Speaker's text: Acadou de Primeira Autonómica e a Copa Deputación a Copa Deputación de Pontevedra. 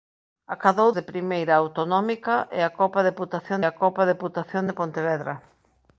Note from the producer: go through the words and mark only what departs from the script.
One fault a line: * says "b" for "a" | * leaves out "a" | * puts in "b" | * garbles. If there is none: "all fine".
all fine